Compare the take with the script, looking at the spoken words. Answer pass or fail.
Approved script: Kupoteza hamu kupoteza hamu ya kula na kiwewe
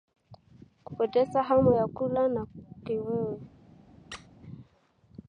fail